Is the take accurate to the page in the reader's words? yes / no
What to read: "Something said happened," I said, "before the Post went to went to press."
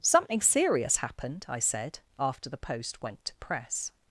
no